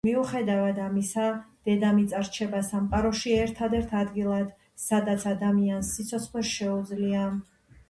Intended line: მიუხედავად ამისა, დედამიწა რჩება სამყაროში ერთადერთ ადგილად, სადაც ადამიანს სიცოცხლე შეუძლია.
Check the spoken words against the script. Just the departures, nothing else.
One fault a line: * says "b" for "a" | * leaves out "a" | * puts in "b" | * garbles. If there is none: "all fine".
all fine